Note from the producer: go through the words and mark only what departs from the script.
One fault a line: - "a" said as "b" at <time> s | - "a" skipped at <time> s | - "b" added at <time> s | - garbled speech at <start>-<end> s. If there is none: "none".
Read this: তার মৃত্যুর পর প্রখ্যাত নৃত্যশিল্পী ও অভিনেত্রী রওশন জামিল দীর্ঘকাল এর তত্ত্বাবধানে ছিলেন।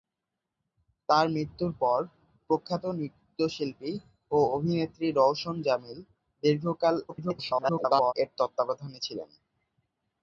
- garbled speech at 7.1-8.1 s